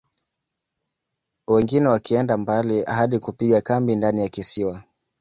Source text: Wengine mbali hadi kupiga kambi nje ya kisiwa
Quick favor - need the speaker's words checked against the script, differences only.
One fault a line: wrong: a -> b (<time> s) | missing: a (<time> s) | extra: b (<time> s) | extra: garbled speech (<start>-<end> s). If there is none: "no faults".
extra: wakienda (1.9 s)
wrong: nje -> ndani (4.0 s)